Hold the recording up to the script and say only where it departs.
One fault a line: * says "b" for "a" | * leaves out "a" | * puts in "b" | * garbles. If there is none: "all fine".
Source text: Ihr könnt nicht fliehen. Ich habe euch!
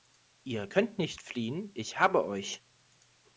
all fine